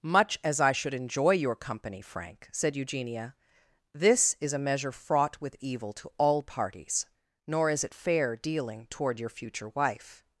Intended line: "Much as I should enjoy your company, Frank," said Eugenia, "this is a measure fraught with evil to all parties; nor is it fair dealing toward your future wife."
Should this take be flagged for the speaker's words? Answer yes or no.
no